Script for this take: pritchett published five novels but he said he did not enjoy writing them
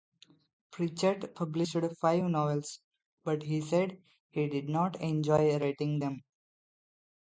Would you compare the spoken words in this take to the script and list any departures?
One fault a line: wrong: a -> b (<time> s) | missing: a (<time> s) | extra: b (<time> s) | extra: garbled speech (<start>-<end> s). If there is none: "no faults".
no faults